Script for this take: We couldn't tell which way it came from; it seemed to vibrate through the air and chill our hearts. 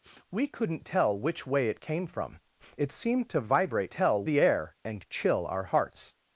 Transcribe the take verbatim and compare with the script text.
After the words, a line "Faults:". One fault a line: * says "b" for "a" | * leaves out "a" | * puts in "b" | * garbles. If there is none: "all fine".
We couldn't tell which way it came from; it seemed to vibrate tell the air and chill our hearts.
Faults:
* says "tell" for "through"